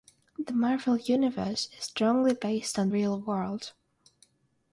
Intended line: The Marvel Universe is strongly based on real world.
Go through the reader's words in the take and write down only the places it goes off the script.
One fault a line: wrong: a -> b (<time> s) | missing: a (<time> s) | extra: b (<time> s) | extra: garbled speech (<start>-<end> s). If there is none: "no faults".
no faults